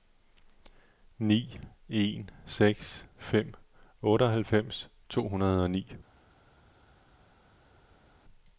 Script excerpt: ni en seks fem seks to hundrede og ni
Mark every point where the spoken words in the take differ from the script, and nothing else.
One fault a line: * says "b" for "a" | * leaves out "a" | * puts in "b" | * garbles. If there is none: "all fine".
* says "otteoghalvfems" for "seks"